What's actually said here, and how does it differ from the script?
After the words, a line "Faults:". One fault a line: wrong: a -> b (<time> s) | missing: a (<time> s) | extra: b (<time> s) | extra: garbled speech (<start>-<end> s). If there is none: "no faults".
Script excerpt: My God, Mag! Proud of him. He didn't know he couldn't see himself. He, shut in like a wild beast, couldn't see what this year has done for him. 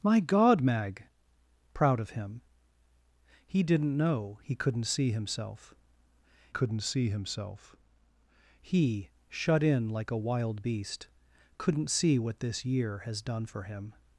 My God, Mag! Proud of him. He didn't know he couldn't see himself couldn't see himself. He, shut in like a wild beast, couldn't see what this year has done for him.
Faults:
extra: couldn't see himself (6.5 s)